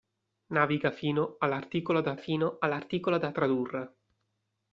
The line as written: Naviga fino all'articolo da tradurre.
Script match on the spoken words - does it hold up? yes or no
no